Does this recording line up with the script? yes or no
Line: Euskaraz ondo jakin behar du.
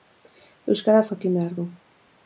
no